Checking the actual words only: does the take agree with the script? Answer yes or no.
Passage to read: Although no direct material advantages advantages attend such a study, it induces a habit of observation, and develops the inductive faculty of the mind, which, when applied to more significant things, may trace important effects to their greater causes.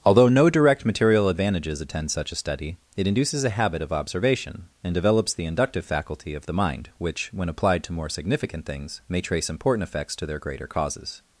no